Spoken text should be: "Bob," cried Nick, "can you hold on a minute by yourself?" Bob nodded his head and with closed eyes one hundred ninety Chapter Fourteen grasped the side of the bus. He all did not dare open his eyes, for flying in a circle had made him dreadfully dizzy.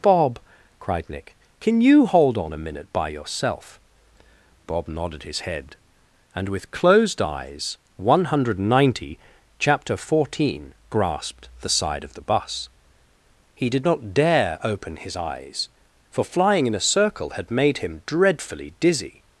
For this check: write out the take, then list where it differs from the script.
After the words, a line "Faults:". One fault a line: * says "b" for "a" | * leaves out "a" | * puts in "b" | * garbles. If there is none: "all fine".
"Bob," cried Nick, "can you hold on a minute by yourself?" Bob nodded his head and with closed eyes one hundred ninety Chapter Fourteen grasped the side of the bus. He did not dare open his eyes, for flying in a circle had made him dreadfully dizzy.
Faults:
* leaves out "all"